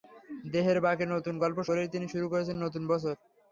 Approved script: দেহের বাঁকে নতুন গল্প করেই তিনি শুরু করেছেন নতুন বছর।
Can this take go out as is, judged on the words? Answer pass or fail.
pass